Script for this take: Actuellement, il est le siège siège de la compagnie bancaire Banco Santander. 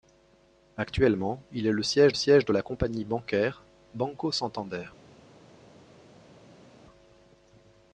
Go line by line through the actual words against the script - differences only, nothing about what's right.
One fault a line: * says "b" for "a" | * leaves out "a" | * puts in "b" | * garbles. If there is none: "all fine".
all fine